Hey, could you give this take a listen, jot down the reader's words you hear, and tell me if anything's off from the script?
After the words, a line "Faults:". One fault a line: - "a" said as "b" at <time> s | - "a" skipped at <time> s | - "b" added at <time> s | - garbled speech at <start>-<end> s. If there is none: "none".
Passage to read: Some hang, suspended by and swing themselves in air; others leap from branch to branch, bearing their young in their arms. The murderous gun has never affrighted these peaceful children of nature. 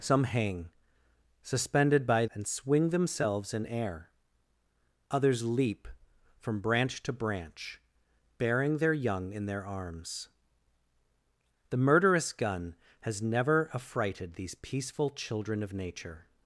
Some hang, suspended by and swing themselves in air; others leap from branch to branch, bearing their young in their arms. The murderous gun has never affrighted these peaceful children of nature.
Faults:
none